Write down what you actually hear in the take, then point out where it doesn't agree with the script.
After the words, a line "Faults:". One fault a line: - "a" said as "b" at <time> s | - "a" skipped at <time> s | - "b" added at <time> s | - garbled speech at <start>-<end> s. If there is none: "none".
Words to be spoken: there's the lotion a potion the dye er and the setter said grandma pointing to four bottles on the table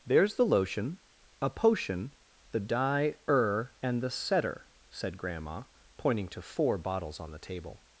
there's the lotion a potion the dye er and the setter said grandma pointing to four bottles on the table
Faults:
none